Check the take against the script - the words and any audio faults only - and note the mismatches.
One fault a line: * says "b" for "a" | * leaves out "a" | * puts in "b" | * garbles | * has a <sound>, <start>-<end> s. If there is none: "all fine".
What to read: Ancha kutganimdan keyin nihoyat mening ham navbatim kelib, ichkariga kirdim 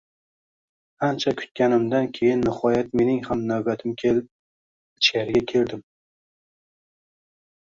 all fine